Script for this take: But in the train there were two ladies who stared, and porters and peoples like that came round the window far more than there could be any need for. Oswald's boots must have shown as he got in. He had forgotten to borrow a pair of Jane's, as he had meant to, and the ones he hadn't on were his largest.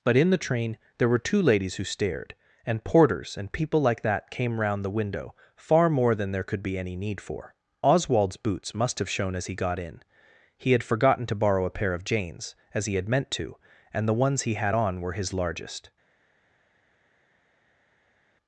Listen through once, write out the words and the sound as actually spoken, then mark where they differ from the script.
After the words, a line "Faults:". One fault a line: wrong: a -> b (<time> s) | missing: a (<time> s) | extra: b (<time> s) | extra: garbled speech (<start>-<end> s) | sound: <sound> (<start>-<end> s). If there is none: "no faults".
But in the train there were two ladies who stared, and porters and people like that came round the window far more than there could be any need for. Oswald's boots must have shown as he got in. He had forgotten to borrow a pair of Jane's, as he had meant to, and the ones he had on were his largest.
Faults:
wrong: peoples -> people (3.5 s)
wrong: hadn't -> had (14.6 s)